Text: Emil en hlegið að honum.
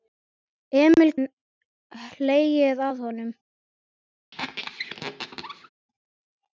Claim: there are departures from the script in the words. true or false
false